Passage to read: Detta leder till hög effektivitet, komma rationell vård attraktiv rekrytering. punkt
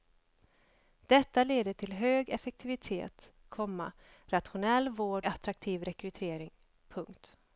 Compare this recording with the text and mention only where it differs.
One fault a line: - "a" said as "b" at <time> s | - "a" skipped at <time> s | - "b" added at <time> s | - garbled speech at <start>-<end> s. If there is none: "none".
none